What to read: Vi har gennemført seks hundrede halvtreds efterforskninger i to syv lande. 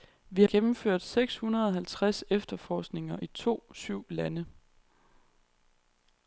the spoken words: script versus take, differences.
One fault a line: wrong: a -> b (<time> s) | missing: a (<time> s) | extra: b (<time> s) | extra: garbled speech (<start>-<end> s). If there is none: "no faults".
missing: har (0.4 s)